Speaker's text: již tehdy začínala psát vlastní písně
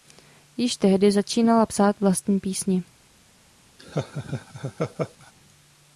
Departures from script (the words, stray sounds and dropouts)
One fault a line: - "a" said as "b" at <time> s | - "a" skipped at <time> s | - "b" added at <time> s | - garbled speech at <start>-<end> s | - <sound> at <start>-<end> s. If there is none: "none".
- laugh at 3.8-5.3 s